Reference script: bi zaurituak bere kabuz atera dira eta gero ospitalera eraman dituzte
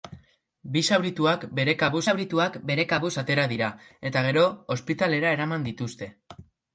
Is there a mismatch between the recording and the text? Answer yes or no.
yes